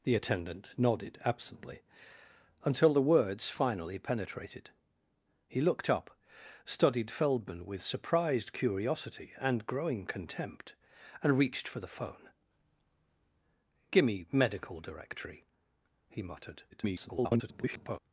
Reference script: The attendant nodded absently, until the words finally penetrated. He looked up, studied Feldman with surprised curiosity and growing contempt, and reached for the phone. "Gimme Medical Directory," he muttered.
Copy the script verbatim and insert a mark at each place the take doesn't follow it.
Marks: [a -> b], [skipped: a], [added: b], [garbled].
The attendant nodded absently, until the words finally penetrated. He looked up, studied Feldman with surprised curiosity and growing contempt, and reached for the phone. "Gimme Medical Directory," he muttered. [garbled]